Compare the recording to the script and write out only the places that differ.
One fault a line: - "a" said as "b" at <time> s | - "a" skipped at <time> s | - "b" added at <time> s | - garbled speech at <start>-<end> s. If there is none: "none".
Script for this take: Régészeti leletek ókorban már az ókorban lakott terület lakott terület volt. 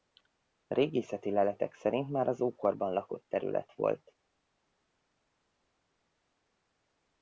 - "ókorban" said as "szerint" at 1.7 s
- "lakott terület" skipped at 3.7 s